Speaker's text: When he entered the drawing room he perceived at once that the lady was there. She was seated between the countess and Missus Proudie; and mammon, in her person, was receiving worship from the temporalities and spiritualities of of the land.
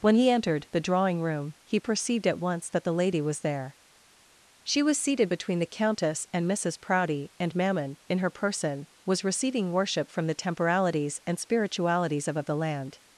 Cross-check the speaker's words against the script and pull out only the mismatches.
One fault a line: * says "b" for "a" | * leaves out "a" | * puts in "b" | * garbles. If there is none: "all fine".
all fine